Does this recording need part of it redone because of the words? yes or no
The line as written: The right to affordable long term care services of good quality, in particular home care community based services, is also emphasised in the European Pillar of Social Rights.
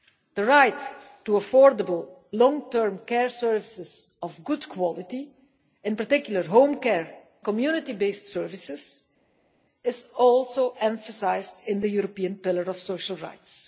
no